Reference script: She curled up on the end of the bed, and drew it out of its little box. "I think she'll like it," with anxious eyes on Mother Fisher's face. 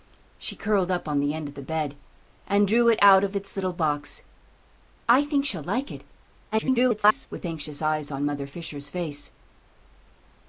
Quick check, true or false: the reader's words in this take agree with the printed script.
false